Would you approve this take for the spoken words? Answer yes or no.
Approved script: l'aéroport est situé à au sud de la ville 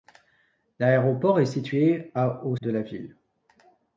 no